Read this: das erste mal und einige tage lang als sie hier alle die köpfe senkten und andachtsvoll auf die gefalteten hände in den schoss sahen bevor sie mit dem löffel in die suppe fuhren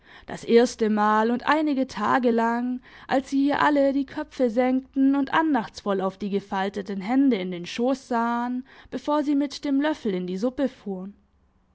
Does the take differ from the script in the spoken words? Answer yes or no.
no